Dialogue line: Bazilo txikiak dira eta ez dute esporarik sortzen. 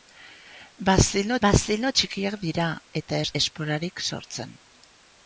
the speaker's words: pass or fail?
fail